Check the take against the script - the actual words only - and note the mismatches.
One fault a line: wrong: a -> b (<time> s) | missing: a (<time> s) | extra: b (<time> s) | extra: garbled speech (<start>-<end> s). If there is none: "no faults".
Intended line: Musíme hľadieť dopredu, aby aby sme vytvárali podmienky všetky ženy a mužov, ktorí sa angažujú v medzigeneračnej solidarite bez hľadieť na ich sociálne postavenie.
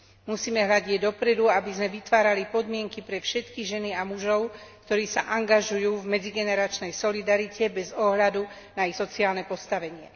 missing: aby (1.7 s)
extra: pre (3.0 s)
wrong: hľadieť -> ohľadu (7.9 s)